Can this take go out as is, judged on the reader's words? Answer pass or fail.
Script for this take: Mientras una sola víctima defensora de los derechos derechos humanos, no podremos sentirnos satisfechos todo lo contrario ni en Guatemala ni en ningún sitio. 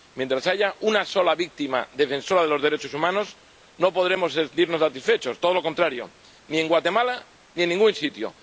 fail